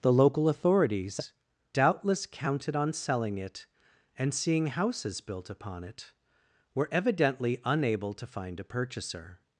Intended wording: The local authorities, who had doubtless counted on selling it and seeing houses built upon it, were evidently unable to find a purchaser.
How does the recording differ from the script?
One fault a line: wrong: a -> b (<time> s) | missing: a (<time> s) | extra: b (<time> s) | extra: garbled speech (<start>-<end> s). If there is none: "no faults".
missing: who had (1.3 s)